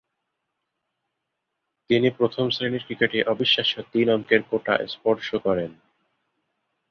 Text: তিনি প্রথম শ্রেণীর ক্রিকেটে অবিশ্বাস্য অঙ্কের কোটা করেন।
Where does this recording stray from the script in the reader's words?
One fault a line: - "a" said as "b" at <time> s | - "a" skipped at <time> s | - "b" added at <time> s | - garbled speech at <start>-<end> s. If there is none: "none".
- "তিন" added at 3.9 s
- "স্পর্শ" added at 4.9 s